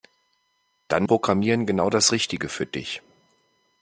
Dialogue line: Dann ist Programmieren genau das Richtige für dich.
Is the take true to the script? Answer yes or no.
no